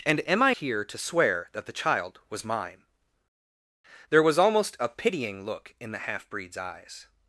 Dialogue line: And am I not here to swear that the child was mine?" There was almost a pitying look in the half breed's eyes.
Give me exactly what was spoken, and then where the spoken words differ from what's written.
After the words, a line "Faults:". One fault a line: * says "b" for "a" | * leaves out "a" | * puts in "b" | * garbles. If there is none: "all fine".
And am I here to swear that the child was mine?" There was almost a pitying look in the half breed's eyes.
Faults:
* leaves out "not"